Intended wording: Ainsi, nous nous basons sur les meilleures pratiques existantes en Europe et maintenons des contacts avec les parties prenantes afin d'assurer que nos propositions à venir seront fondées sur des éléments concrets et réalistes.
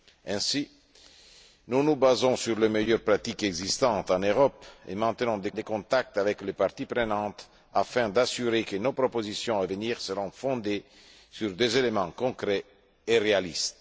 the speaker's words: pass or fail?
fail